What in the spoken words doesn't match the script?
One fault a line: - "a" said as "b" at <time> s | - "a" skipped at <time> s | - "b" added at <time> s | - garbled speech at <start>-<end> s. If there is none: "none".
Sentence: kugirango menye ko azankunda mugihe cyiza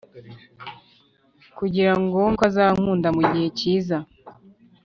- "menye" skipped at 2.2 s